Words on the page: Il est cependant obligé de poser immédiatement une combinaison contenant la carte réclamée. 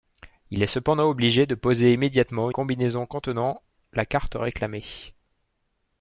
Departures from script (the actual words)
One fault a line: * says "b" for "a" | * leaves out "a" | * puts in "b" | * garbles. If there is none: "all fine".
* leaves out "une"